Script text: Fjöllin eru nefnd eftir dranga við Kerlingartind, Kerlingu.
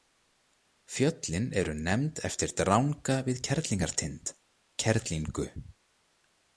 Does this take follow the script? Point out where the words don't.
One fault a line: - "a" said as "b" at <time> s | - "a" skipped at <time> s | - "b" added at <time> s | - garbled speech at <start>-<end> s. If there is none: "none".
none